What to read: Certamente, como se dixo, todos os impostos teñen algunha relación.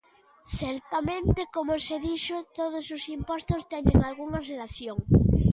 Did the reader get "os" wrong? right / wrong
right